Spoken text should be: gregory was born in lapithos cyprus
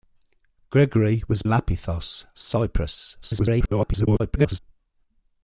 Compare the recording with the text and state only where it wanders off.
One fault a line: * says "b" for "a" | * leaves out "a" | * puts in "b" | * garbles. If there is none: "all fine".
* leaves out "born in"
* garbles